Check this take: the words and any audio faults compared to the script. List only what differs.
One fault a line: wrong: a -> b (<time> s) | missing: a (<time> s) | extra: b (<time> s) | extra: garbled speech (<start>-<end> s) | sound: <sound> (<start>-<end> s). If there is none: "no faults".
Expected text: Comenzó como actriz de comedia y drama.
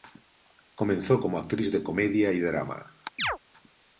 sound: chirp (3.2-3.4 s)